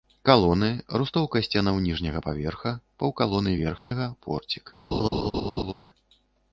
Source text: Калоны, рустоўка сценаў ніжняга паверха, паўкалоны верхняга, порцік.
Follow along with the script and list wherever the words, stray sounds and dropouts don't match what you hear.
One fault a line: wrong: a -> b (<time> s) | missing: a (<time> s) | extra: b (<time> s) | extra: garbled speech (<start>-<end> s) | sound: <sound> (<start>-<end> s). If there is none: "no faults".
sound: dropout (3.8-3.9 s)
sound: laugh (4.9-5.7 s)